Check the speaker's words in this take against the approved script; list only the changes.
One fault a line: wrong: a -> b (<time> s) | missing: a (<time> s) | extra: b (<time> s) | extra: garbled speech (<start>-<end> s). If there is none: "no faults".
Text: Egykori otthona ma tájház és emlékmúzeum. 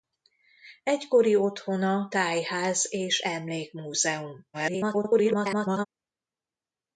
missing: ma (2.1 s)
extra: garbled speech (4.5-5.9 s)